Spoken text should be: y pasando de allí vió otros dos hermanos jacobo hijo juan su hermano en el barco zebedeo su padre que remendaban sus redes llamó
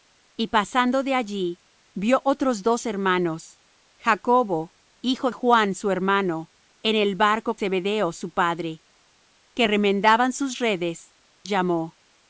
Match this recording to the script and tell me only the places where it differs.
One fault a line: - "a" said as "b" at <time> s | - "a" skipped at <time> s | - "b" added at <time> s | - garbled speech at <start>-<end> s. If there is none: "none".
none